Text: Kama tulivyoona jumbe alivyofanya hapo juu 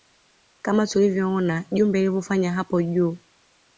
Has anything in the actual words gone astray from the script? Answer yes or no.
no